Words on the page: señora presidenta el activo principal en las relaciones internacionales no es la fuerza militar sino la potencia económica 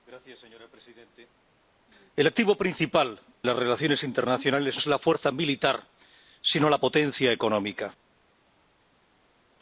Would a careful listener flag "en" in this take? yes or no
yes